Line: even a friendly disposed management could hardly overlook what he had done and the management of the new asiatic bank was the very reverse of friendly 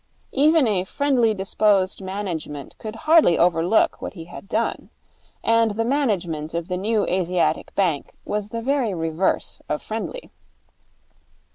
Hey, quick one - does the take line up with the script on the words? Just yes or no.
yes